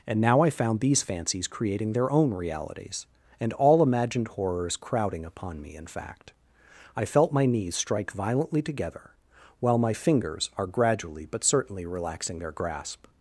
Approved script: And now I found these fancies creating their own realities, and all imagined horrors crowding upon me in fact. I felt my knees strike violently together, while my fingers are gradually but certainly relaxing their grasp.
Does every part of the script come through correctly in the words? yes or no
yes